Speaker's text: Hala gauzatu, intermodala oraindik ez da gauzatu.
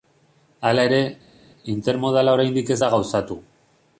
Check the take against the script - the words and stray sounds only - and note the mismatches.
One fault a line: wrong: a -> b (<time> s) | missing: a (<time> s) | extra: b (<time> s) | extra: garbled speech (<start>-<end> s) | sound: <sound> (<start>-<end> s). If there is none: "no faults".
wrong: gauzatu -> ere (0.9 s)